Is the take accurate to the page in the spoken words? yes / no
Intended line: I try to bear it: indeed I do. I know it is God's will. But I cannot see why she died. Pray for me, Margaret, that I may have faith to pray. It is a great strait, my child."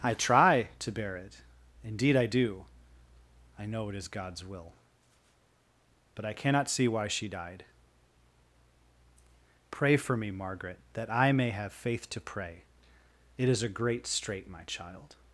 yes